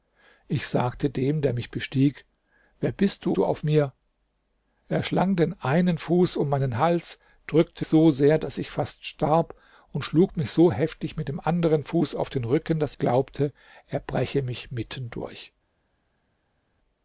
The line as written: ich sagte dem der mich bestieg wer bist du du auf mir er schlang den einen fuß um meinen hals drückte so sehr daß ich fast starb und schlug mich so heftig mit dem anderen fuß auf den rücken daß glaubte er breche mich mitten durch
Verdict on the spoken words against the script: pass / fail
pass